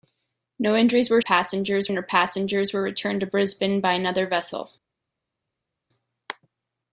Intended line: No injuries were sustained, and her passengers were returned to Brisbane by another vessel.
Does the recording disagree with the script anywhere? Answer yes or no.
yes